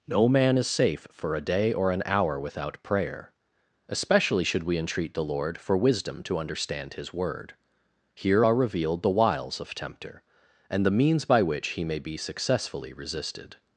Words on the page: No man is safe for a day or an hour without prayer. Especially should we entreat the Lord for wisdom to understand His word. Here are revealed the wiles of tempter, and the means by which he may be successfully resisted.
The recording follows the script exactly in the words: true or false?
true